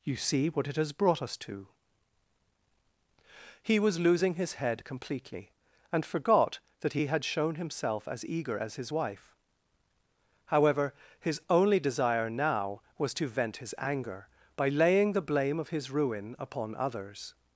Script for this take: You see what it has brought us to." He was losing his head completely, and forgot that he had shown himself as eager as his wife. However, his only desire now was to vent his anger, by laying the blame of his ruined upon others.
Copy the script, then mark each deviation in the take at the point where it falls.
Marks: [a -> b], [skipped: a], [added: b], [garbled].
You see what it has brought us to." He was losing his head completely, and forgot that he had shown himself as eager as his wife. However, his only desire now was to vent his anger, by laying the blame of his [ruined -> ruin] upon others.